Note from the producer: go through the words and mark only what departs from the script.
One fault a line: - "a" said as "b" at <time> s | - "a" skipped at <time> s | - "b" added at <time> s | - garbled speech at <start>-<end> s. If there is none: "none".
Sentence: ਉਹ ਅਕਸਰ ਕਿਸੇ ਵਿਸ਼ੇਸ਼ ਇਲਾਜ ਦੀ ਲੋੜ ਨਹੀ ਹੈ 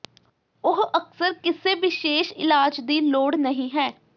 none